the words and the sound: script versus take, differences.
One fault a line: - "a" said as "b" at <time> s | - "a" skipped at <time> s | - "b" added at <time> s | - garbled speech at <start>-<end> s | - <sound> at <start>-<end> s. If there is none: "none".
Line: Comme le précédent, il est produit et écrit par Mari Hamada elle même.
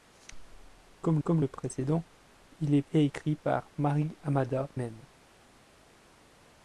- "comme" added at 1.2 s
- "produit" skipped at 2.8 s
- "elle" skipped at 4.7 s